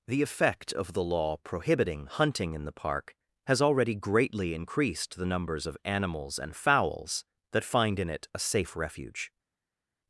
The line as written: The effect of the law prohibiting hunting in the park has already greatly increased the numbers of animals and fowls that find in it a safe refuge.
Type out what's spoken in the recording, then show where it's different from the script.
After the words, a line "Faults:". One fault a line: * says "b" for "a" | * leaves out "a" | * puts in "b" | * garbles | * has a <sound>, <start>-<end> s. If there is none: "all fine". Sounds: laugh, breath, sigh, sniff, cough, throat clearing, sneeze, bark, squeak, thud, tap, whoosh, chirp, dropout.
The effect of the law prohibiting hunting in the park has already greatly increased the numbers of animals and fowls that find in it a safe refuge.
Faults:
all fine